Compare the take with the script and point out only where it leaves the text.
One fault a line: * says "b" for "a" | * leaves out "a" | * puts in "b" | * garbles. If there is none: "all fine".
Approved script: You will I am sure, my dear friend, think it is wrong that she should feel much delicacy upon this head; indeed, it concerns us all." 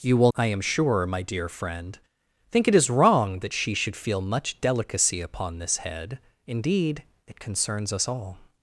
all fine